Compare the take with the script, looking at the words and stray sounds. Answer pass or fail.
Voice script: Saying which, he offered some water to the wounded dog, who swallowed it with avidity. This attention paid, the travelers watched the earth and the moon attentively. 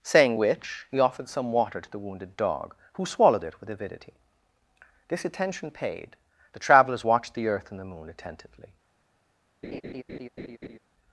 fail